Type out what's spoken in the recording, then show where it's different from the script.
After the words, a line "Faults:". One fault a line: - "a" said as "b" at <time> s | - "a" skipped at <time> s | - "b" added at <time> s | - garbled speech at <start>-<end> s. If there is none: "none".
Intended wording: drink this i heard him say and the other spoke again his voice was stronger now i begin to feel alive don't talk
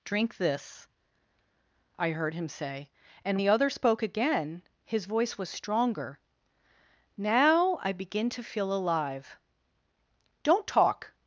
drink this i heard him say and the other spoke again his voice was stronger now i begin to feel alive don't talk
Faults:
none